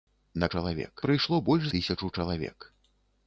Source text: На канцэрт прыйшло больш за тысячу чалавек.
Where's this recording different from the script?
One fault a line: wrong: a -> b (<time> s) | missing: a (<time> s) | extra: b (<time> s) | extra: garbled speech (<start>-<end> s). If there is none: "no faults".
wrong: канцэрт -> чалавек (0.5 s)
missing: за (1.7 s)